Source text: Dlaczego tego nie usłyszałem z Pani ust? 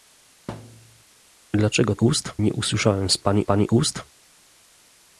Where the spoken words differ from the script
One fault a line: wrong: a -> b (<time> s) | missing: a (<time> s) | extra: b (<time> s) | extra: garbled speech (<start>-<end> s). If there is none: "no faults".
wrong: tego -> ust (2.0 s)
extra: Pani (3.4 s)